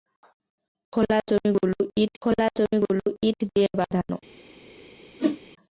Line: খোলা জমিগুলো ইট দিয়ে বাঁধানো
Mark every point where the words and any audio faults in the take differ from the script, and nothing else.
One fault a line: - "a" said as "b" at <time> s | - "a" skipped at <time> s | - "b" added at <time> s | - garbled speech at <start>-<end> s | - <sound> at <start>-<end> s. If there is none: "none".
- "খোলা জমিগুলো ইট" added at 2.2 s
- whoosh at 5.2-5.4 s